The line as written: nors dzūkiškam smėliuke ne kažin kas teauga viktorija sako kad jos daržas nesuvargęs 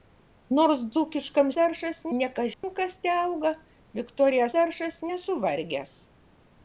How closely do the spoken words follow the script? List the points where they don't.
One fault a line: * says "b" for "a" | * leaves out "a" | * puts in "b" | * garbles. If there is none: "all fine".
* says "daržas" for "smėliuke"
* leaves out "sako kad jos"